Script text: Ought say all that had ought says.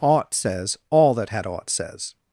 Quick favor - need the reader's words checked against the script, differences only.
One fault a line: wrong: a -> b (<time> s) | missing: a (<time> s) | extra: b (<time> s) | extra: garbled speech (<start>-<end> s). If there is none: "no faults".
wrong: say -> says (0.3 s)